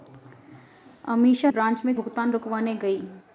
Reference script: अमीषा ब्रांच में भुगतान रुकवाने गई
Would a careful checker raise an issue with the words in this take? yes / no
no